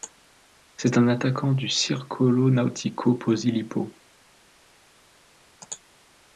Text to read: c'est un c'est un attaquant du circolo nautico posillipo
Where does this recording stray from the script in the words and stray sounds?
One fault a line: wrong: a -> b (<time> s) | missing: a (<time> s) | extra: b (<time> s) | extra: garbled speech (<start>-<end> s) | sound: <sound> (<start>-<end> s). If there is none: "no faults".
missing: c'est un (1.1 s)